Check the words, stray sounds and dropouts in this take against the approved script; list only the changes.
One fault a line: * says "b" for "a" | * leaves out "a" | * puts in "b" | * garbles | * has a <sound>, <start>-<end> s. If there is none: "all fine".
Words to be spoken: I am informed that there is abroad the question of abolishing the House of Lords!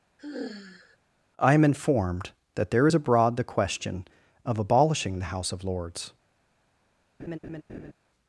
* has a sigh, 0.2-1.0 s
* has a laugh, 7.2-7.9 s